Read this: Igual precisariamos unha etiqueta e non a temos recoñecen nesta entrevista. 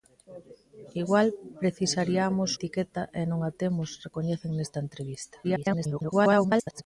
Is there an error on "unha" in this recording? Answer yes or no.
yes